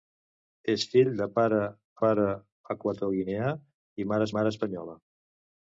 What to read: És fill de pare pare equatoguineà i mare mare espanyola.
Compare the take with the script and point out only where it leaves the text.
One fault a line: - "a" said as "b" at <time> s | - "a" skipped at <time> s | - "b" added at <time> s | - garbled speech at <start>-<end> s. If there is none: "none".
none